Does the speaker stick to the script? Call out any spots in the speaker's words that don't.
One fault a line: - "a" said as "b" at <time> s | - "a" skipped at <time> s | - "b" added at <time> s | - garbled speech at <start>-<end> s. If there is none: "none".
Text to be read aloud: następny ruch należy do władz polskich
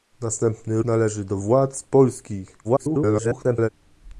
- "ruch" skipped at 0.8 s
- garbled speech at 2.6-3.7 s